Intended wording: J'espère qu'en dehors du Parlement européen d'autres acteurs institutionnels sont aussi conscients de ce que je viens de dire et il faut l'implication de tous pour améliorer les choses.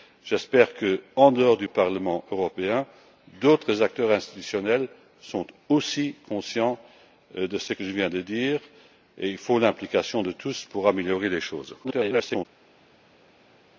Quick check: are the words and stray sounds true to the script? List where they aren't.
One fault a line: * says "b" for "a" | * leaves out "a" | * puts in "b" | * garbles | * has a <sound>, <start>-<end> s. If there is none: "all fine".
* garbles